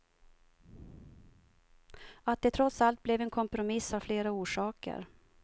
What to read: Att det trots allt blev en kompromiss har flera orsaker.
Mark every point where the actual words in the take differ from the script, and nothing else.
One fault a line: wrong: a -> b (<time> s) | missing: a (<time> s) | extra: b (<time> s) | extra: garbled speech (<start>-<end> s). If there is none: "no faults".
no faults